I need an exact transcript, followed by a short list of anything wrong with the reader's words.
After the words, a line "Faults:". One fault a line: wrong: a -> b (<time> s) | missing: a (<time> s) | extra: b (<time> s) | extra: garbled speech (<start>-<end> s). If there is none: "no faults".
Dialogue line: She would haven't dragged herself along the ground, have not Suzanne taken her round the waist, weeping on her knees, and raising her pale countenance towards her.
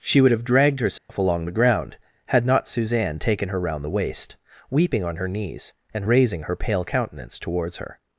She would have dragged herself along the ground, had not Suzanne taken her round the waist, weeping on her knees, and raising her pale countenance towards her.
Faults:
wrong: haven't -> have (0.3 s)
wrong: have -> had (2.2 s)